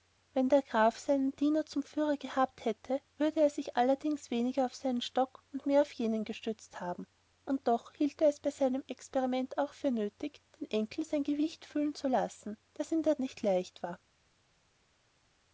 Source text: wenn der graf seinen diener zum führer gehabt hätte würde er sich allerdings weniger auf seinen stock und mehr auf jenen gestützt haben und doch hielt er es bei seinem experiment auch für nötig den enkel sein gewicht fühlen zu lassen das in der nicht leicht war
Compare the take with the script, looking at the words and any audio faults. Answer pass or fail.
pass